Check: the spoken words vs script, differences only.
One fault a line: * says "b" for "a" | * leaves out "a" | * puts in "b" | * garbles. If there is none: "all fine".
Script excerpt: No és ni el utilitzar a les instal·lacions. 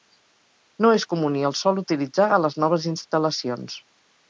* puts in "comú"
* puts in "sol"
* puts in "noves"